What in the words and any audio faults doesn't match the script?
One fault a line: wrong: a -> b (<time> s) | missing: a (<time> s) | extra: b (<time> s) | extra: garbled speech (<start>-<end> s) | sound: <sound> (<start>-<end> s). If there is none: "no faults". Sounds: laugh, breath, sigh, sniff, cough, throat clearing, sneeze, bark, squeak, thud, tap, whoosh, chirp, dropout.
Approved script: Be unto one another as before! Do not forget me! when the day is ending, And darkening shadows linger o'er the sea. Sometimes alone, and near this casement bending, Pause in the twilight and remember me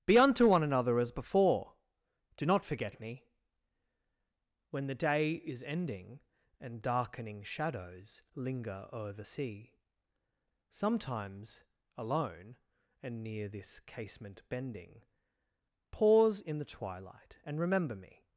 no faults